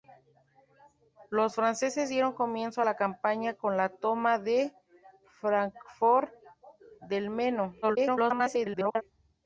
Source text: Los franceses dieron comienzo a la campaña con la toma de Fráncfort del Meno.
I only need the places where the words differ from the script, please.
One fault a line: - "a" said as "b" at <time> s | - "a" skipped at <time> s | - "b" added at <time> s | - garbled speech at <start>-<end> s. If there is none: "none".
- garbled speech at 7.8-9.0 s